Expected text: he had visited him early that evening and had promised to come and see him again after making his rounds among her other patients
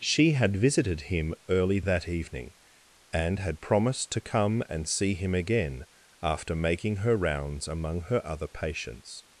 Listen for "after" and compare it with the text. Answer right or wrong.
right